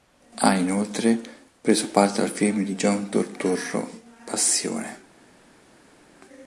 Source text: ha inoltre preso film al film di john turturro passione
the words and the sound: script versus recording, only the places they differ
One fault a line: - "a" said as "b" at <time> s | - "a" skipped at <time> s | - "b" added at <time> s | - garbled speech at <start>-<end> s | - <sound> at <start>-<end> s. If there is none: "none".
- "film" said as "parte" at 1.9 s